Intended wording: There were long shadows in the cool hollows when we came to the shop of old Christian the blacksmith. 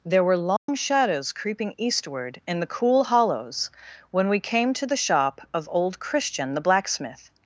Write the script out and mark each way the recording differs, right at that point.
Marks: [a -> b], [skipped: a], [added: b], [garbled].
There were long shadows [added: creeping eastward] in the cool hollows when we came to the shop of old Christian the blacksmith.